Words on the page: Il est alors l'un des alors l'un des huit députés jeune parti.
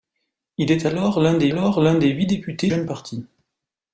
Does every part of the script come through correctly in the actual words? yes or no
yes